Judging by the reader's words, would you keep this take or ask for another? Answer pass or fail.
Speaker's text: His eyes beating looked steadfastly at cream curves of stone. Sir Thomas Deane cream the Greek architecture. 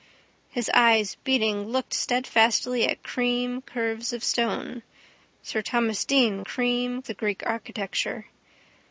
pass